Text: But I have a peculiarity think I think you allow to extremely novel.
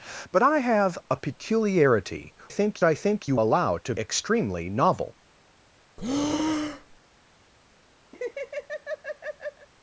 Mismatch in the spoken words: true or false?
false